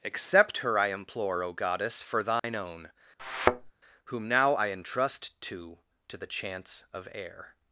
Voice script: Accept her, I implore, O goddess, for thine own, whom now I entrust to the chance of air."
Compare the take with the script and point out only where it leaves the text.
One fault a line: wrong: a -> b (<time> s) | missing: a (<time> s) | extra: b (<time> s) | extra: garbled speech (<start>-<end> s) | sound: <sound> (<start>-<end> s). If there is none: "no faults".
sound: dropout (2.4-2.4 s)
sound: thud (3.2-3.7 s)
extra: to (6.1 s)